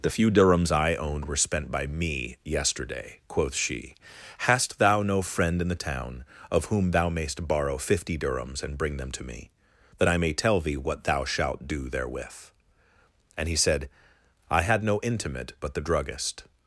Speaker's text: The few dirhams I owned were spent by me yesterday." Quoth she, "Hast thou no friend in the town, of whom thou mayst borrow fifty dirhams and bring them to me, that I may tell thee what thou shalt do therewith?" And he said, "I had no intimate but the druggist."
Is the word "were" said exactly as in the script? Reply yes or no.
yes